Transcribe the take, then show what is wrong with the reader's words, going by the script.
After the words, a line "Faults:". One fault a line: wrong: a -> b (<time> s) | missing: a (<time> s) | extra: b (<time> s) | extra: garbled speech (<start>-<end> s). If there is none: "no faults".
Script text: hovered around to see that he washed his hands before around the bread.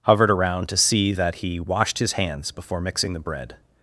hovered around to see that he washed his hands before mixing the bread.
Faults:
wrong: around -> mixing (2.8 s)